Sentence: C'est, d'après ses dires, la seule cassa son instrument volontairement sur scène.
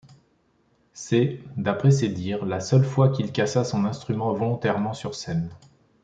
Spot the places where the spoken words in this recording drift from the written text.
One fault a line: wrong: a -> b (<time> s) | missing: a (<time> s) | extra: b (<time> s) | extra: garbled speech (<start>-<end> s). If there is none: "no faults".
extra: fois qu'il (2.8 s)